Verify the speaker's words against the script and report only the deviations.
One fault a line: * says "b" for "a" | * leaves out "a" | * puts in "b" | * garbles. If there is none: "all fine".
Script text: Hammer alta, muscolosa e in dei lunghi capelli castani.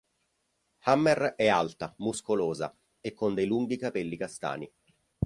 * puts in "è"
* says "con" for "in"